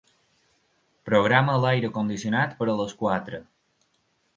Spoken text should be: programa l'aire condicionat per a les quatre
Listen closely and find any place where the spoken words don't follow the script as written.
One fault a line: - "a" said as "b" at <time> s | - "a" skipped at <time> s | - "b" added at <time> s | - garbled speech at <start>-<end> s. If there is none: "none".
none